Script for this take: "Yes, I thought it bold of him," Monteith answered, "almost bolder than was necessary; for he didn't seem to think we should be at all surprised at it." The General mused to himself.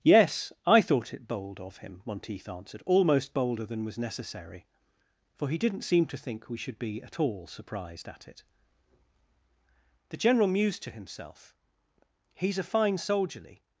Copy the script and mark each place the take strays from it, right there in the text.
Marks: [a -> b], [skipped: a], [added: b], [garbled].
"Yes, I thought it bold of him," Monteith answered, "almost bolder than was necessary; for he didn't seem to think we should be at all surprised at it." The General mused to himself. [added: He's a fine soldierly]